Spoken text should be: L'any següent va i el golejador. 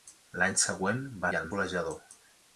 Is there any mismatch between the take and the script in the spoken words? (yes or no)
no